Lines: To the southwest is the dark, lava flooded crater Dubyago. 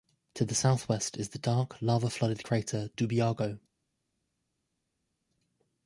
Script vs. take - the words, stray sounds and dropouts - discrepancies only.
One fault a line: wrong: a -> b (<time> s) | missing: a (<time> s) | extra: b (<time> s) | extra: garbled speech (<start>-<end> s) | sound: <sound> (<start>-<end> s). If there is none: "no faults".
no faults